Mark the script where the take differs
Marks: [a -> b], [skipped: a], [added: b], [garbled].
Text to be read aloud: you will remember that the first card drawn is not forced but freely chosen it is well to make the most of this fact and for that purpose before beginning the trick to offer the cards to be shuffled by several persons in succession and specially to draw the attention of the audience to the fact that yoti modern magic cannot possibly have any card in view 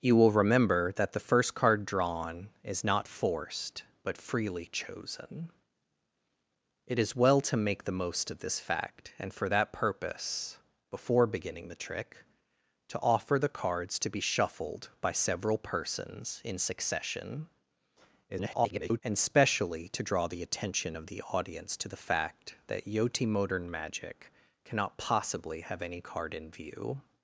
you will remember that the first card drawn is not forced but freely chosen it is well to make the most of this fact and for that purpose before beginning the trick to offer the cards to be shuffled by several persons in succession [garbled] and specially to draw the attention of the audience to the fact that yoti modern magic cannot possibly have any card in view